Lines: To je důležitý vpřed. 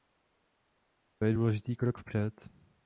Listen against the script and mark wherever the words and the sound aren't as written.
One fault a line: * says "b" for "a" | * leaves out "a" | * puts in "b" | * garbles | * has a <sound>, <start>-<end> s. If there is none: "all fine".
* puts in "krok"